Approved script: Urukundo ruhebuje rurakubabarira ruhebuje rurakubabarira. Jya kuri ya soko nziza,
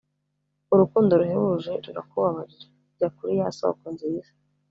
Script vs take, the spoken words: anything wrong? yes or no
yes